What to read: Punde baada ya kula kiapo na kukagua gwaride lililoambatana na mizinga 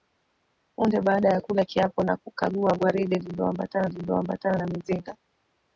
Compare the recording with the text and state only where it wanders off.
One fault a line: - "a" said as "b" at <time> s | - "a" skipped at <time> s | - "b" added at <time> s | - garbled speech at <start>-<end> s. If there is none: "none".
- "lililoambatana" added at 3.8 s